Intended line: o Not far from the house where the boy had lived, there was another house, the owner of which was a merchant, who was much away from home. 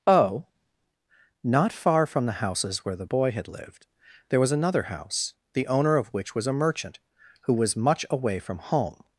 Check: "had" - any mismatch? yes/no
no